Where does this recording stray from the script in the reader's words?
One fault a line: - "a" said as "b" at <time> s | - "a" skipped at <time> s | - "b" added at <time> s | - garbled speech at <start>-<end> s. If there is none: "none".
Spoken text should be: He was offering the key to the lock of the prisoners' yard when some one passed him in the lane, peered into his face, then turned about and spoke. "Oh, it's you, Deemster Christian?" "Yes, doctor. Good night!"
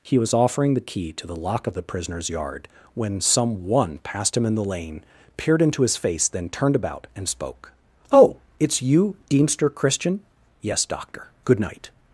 none